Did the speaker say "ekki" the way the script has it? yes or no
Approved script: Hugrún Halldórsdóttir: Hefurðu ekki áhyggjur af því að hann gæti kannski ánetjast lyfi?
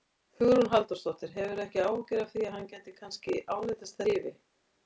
yes